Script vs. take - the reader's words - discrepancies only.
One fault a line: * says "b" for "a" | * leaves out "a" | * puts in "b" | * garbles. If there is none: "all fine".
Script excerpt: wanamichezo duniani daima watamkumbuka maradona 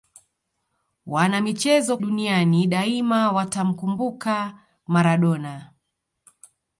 all fine